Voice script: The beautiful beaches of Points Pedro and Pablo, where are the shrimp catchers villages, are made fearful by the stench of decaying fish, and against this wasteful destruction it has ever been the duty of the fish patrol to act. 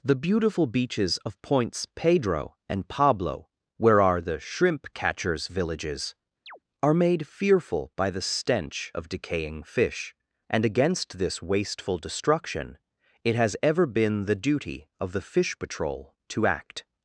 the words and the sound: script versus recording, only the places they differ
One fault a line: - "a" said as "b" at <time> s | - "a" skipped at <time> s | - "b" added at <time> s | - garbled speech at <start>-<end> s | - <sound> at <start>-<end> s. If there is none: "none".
- chirp at 6.5-6.6 s